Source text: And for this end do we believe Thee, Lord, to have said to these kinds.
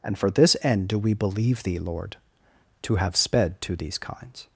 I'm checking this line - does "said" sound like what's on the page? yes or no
no